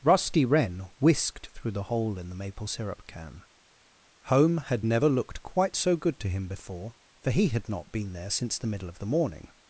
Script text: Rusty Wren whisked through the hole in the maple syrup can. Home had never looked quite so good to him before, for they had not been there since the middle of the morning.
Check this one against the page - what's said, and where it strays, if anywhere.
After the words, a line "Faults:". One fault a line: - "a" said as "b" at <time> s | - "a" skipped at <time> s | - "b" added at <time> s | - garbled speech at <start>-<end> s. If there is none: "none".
Rusty Wren whisked through the hole in the maple syrup can. Home had never looked quite so good to him before, for he had not been there since the middle of the morning.
Faults:
- "they" said as "he" at 7.3 s